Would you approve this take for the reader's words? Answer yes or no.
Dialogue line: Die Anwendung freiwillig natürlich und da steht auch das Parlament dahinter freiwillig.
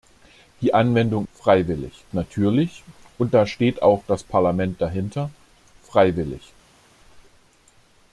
yes